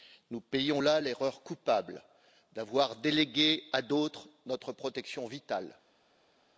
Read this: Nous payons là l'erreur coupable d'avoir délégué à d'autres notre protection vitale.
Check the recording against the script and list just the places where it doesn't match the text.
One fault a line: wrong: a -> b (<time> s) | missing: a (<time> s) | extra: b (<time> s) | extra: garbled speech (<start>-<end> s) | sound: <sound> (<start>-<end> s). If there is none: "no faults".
no faults